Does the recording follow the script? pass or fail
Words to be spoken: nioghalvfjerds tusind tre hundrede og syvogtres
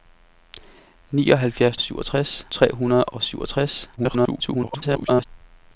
fail